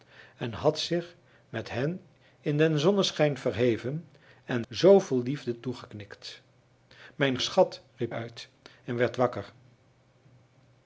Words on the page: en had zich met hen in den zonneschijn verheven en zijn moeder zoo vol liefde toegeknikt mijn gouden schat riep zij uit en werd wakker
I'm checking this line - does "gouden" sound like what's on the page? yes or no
no